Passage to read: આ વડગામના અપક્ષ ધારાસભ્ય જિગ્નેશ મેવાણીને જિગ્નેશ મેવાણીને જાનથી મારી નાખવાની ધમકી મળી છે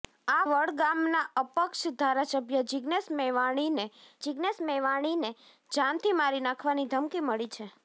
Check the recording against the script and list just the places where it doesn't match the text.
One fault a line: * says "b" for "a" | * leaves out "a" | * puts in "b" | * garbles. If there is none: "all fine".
all fine